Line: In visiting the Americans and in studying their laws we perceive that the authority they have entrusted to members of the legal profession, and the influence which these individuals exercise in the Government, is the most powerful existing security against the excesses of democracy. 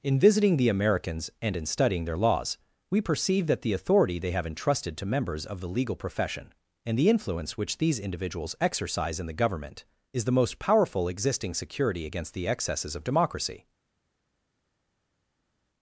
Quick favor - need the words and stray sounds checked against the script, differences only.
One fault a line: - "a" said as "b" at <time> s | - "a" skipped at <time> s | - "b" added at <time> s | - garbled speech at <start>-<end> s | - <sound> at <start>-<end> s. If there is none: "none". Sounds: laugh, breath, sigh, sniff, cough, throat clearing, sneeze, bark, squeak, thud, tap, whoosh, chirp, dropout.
none